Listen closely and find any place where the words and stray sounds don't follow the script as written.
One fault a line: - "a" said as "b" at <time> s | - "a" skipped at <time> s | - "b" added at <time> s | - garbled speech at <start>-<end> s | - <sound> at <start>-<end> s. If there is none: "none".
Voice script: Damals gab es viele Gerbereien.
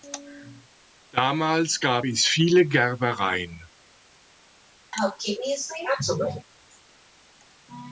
- sneeze at 4.9-6.5 s